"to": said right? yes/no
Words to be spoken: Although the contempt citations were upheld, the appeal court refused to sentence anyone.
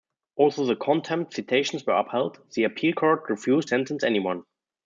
no